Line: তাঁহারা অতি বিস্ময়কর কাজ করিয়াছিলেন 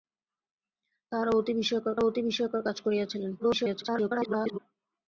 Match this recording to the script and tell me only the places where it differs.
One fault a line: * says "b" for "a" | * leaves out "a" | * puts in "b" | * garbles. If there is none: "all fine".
* puts in "অতি বিস্ময়কর"
* garbles